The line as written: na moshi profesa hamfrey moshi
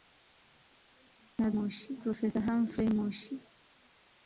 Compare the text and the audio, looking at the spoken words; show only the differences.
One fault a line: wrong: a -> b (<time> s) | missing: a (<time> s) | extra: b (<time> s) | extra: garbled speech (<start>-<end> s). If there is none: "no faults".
no faults